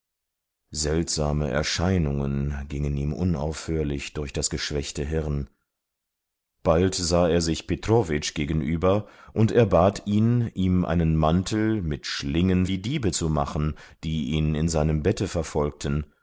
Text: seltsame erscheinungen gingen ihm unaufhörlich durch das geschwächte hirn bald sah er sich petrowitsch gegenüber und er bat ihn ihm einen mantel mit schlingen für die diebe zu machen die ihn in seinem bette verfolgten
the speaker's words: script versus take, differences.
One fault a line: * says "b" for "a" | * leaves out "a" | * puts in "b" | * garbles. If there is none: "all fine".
* leaves out "für"